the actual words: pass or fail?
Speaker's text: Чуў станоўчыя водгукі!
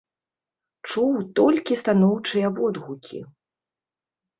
fail